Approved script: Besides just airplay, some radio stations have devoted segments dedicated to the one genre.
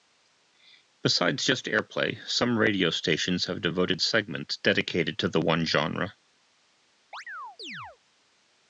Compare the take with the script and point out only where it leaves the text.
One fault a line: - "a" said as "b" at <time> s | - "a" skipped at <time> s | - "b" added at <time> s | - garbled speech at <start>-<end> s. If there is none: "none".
none